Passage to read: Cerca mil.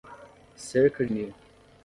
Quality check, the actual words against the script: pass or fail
pass